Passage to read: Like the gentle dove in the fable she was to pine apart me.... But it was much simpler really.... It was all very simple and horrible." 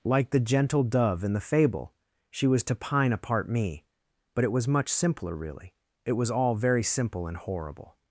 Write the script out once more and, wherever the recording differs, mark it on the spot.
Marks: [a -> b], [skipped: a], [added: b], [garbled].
Like the gentle dove in the fable she was to pine apart me.... But it was much simpler really.... It was all very simple and horrible."